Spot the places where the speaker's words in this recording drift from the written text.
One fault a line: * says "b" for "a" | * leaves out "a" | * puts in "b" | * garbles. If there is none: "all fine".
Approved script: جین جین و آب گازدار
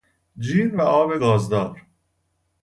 * leaves out "جین"